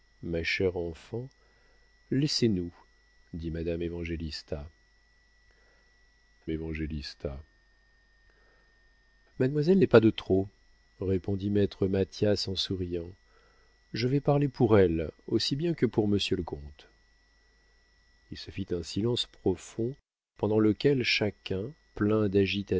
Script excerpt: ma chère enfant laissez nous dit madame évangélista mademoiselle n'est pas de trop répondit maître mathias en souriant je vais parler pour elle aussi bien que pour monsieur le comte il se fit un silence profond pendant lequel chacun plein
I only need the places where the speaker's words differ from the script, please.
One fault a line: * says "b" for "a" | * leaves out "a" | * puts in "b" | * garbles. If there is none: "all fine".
* puts in "évangélista"